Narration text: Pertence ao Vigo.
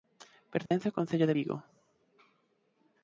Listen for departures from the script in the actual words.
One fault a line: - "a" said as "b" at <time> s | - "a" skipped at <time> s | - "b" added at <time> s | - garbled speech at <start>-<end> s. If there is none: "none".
- "concello de" added at 1.0 s